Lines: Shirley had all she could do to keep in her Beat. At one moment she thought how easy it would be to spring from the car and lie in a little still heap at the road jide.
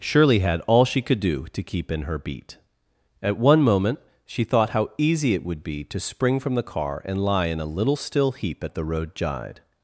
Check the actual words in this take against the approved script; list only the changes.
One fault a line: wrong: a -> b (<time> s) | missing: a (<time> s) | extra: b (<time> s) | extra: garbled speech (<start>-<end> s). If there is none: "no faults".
no faults